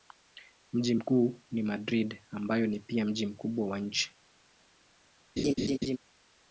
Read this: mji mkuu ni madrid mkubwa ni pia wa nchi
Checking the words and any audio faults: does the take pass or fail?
fail